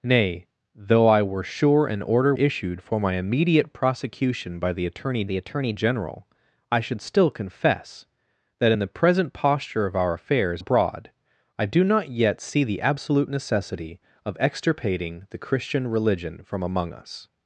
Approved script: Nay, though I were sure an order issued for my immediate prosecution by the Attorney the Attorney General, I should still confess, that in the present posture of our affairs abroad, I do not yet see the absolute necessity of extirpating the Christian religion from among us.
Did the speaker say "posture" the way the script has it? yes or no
yes